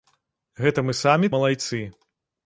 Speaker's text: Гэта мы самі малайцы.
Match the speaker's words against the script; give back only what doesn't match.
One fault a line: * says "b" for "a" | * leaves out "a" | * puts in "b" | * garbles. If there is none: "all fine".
all fine